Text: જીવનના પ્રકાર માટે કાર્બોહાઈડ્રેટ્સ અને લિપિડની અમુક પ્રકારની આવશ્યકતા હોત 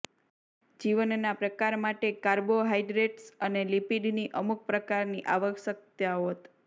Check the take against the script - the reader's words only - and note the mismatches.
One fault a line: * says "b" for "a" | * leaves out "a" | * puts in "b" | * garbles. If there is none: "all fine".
all fine